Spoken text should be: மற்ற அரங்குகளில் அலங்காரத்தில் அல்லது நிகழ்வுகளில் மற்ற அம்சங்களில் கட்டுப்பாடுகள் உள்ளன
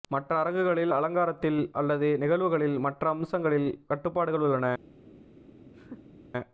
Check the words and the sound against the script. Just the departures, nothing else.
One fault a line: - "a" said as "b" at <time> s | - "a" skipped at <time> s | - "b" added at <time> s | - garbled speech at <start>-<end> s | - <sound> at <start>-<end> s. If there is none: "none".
- laugh at 5.7-6.2 s